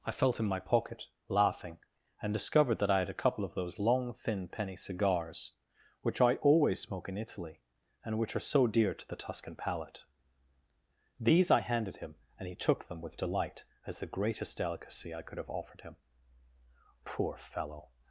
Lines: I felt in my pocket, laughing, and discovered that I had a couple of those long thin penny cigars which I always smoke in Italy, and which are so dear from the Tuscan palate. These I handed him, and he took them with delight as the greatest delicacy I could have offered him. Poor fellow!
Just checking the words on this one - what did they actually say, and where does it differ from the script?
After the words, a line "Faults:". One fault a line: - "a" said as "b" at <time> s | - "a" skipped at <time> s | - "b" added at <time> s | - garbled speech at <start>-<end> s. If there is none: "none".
I felt in my pocket, laughing, and discovered that I had a couple of those long thin penny cigars which I always smoke in Italy, and which are so dear to the Tuscan palate. These I handed him, and he took them with delight as the greatest delicacy I could have offered him. Poor fellow!
Faults:
- "from" said as "to" at 8.9 s